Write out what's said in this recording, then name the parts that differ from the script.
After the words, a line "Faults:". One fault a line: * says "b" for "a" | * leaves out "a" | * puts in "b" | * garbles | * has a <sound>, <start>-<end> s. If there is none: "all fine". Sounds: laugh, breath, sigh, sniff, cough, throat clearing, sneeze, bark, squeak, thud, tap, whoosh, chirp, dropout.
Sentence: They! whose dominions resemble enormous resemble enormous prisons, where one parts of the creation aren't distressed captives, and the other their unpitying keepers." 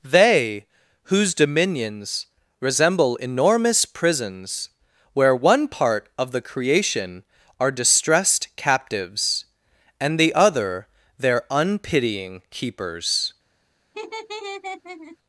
They! whose dominions resemble enormous prisons, where one part of the creation are distressed captives, and the other their unpitying keepers."
Faults:
* leaves out "resemble enormous"
* says "part" for "parts"
* says "are" for "aren't"
* has a laugh, 13.9-15.2 s